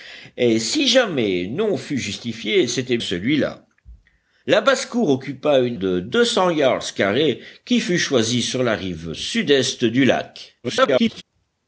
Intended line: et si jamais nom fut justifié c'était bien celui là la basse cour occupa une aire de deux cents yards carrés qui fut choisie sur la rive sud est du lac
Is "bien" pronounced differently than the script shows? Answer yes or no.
yes